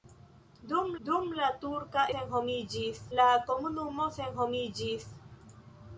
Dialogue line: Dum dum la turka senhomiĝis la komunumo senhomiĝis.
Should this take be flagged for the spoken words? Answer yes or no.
no